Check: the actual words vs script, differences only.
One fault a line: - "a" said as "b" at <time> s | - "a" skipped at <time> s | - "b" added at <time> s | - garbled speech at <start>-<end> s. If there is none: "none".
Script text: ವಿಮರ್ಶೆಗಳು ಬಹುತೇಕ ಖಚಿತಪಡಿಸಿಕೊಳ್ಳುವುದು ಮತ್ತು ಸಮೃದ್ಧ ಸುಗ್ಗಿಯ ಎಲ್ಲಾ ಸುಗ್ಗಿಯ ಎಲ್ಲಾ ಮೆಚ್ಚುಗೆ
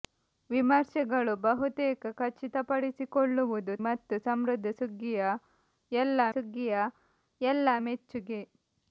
none